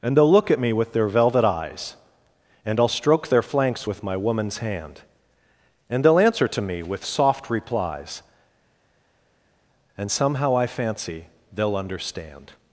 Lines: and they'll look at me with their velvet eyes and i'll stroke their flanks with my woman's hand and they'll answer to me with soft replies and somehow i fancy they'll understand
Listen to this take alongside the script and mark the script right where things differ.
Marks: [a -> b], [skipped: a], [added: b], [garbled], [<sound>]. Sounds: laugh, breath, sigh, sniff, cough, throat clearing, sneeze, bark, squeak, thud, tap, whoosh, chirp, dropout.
and they'll look at me with their velvet eyes and i'll stroke their flanks with my woman's hand and they'll answer to me with soft replies and somehow i fancy they'll understand